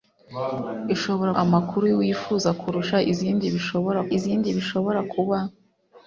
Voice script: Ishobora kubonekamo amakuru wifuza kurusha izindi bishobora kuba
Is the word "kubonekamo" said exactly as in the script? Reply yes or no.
no